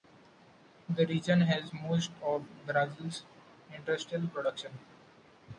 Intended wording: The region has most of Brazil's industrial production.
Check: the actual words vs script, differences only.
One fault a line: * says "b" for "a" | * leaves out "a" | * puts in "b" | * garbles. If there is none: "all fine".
all fine